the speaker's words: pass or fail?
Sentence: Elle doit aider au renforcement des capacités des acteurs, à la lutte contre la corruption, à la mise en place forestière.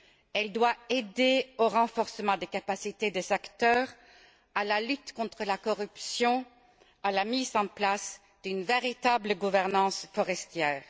fail